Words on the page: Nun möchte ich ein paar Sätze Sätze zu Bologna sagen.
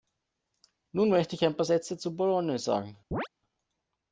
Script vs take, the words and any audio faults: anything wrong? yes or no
yes